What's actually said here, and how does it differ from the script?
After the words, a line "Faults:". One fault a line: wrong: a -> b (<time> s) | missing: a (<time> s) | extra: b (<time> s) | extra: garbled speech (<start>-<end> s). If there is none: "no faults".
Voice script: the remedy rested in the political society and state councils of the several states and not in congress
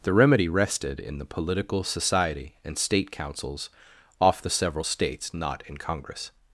the remedy rested in the political society and state councils off the several states not in congress
Faults:
wrong: of -> off (4.2 s)
missing: and (5.3 s)